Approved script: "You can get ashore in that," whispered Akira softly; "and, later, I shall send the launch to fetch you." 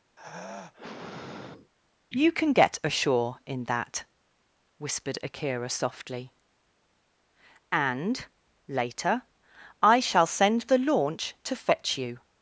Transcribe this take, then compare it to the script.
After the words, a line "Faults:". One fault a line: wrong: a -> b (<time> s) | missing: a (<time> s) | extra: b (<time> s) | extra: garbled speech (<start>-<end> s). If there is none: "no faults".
"You can get ashore in that," whispered Akira softly; "and, later, I shall send the launch to fetch you."
Faults:
no faults